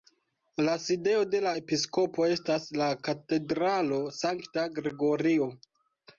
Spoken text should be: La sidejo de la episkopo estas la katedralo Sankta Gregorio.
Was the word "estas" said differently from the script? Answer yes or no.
no